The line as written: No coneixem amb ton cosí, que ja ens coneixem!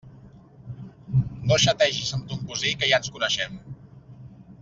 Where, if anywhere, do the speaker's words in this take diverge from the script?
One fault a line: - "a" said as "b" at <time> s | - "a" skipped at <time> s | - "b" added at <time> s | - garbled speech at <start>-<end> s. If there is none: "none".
- "coneixem" said as "xategis" at 1.6 s